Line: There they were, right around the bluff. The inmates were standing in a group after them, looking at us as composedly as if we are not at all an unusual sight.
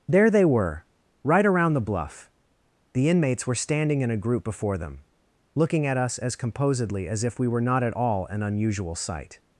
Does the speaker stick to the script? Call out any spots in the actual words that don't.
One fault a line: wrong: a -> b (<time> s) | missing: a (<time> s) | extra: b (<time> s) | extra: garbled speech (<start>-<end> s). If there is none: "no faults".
wrong: after -> before (4.4 s)
wrong: are -> were (7.5 s)